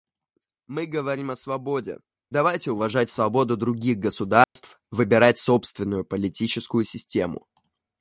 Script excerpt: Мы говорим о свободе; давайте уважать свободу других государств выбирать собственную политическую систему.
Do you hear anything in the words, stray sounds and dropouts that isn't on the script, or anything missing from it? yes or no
yes